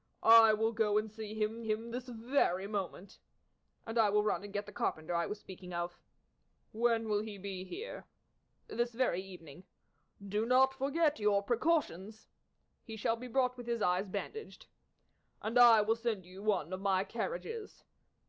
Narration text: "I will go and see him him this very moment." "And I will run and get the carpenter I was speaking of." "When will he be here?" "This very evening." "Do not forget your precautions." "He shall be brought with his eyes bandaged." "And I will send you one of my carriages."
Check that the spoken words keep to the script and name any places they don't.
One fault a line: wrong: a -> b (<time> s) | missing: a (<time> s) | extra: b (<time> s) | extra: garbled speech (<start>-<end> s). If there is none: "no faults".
no faults